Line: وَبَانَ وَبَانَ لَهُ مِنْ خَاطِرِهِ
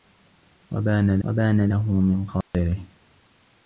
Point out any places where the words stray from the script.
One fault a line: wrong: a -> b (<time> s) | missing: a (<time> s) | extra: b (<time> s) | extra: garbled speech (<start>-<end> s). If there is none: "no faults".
no faults